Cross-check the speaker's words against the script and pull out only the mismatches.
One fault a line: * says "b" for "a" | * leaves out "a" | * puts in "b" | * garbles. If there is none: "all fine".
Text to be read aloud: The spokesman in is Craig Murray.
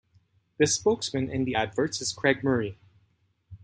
* puts in "the adverts"